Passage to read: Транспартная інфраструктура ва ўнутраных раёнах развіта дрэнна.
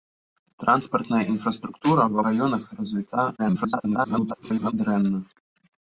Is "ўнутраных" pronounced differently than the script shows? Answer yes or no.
yes